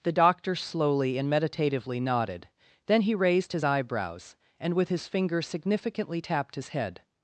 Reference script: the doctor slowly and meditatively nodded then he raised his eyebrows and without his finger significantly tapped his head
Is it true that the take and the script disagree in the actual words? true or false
true